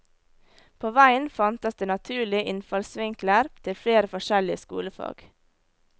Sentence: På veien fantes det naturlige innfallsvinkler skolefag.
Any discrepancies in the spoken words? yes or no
yes